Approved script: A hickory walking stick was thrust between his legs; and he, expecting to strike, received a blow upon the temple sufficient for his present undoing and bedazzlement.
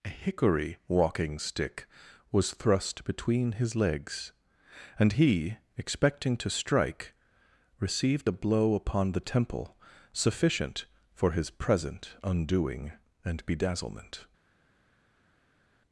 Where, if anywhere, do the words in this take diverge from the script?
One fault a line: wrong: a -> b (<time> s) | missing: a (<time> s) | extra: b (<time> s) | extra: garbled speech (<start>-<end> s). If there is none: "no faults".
no faults